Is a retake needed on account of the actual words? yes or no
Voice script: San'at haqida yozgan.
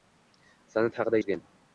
no